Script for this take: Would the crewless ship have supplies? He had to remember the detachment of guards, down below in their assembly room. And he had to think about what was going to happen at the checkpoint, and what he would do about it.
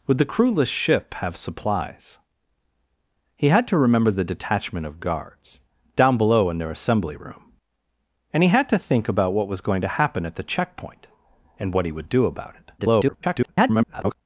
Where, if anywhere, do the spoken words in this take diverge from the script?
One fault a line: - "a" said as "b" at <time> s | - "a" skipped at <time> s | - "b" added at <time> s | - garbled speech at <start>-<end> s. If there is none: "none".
- garbled speech at 12.8-14.2 s